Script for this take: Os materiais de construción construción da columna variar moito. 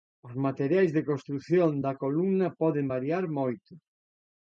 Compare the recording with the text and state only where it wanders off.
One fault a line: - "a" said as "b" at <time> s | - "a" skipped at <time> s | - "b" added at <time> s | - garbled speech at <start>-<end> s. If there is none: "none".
- "construción" skipped at 1.7 s
- "poden" added at 2.6 s